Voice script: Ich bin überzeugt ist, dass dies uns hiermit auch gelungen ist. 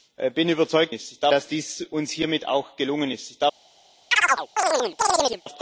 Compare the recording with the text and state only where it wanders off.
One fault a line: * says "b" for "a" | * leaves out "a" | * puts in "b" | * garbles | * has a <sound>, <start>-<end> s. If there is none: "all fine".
* has a chirp, 4.1-5.4 s